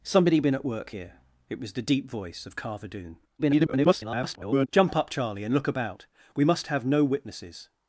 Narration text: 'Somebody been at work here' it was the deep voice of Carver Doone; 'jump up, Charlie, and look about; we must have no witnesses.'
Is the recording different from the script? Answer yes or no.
yes